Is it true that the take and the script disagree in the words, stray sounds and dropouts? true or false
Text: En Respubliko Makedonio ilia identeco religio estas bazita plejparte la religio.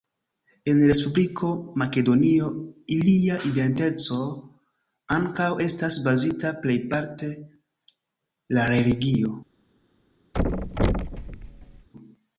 true